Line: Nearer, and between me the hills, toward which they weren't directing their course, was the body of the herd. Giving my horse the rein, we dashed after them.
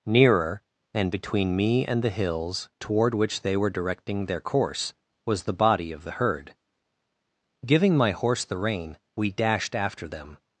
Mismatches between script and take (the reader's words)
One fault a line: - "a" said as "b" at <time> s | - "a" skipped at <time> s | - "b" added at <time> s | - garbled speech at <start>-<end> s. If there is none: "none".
- "and" added at 1.9 s
- "weren't" said as "were" at 3.5 s